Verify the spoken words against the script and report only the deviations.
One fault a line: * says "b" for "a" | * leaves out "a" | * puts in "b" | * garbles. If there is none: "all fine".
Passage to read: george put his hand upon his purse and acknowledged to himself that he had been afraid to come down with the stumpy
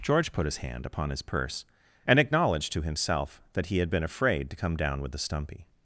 all fine